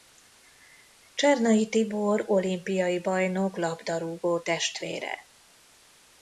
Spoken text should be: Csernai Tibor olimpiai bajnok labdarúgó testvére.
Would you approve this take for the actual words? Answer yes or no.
yes